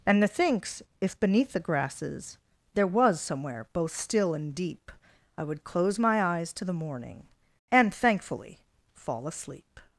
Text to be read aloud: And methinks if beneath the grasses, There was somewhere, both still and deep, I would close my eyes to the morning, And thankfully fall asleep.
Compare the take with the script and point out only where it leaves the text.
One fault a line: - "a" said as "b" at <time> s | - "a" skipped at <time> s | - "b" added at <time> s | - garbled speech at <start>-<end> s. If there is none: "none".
none